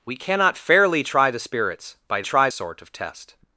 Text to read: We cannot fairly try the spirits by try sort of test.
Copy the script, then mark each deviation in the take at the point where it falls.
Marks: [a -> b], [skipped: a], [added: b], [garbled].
We cannot fairly try the spirits by try sort of test.